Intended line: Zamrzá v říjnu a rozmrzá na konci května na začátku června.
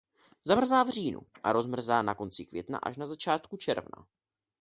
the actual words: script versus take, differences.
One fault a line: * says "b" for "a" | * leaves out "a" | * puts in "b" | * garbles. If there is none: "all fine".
* puts in "až"